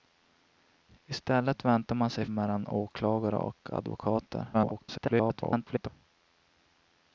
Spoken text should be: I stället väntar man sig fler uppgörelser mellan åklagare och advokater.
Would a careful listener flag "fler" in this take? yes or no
yes